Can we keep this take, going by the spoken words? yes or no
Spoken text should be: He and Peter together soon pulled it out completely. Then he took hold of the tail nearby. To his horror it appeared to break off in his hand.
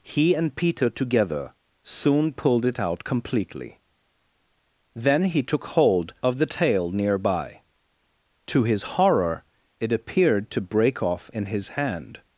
yes